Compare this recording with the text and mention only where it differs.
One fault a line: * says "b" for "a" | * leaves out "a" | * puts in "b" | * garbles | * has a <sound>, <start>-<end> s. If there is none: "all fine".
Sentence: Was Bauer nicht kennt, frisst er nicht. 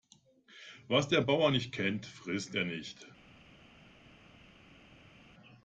* puts in "der"